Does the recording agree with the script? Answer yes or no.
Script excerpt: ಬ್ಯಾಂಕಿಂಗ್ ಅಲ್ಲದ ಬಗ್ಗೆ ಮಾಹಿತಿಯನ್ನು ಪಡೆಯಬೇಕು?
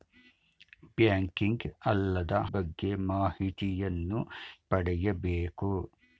yes